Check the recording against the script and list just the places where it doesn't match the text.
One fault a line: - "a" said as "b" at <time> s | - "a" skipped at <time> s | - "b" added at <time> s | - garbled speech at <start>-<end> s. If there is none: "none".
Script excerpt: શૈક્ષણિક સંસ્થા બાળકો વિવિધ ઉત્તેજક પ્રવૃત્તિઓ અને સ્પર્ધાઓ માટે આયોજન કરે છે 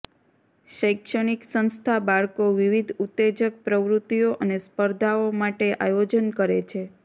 none